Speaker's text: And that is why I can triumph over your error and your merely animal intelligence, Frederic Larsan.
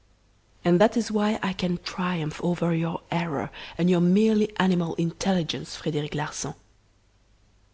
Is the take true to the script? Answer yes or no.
yes